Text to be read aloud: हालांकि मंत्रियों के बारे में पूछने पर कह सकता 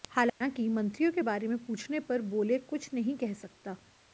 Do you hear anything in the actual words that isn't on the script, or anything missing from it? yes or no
yes